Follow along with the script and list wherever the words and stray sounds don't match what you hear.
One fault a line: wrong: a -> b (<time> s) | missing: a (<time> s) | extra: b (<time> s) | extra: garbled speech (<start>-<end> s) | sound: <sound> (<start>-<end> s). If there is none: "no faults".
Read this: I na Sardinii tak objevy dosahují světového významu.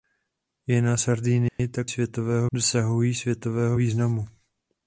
sound: dropout (1.5-1.6 s)
wrong: objevy -> světového (1.8 s)